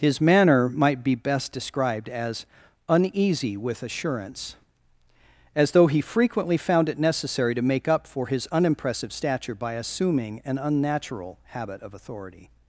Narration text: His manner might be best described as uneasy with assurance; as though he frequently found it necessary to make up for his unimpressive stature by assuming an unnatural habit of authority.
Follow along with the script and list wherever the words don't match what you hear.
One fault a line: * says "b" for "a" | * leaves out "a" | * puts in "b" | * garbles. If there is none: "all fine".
all fine